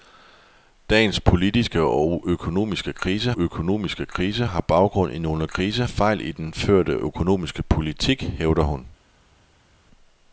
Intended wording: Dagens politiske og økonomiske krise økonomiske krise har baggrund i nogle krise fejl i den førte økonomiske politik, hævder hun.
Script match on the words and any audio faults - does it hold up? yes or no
yes